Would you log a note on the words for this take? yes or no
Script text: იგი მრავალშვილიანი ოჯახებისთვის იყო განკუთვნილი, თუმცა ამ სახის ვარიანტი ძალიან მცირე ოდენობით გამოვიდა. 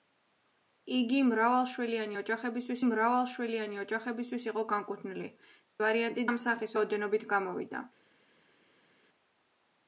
yes